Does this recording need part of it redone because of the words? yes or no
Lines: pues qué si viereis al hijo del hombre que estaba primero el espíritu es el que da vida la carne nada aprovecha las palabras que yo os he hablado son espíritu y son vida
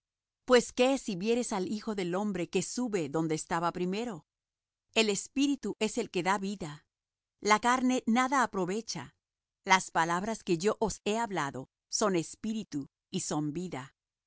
yes